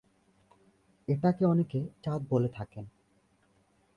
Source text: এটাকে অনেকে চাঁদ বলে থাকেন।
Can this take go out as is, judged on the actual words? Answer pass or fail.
pass